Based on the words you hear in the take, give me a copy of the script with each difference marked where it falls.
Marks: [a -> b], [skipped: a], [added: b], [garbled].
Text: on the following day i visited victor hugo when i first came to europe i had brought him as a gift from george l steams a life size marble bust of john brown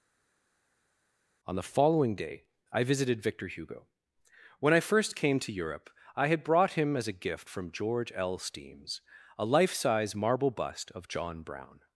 on the following day i visited victor hugo when i first came to europe i had brought him as a gift from george l steams a life size marble bust of john brown